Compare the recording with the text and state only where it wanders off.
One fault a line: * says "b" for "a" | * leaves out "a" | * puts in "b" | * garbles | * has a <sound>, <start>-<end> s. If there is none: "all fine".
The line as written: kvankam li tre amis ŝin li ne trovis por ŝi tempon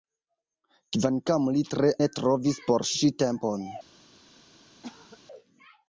* leaves out "amis ŝin li"
* has a cough, 4.8-5.2 s